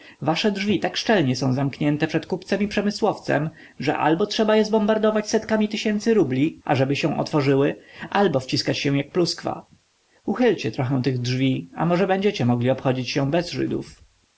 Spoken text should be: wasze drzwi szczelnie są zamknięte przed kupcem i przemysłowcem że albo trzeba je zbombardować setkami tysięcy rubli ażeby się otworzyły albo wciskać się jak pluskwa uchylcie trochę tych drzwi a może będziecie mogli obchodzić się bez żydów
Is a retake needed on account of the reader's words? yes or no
yes